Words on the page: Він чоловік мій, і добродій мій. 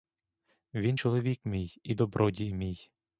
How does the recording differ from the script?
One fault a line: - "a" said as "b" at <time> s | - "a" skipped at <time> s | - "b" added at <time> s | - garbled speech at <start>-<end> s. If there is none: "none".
none